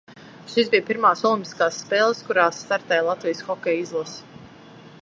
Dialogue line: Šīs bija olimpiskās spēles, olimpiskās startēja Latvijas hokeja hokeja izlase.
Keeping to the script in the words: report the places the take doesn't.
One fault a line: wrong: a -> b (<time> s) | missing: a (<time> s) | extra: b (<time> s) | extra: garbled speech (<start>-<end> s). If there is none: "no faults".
extra: pirmās (0.9 s)
wrong: olimpiskās -> kurās (2.3 s)
missing: hokeja (3.9 s)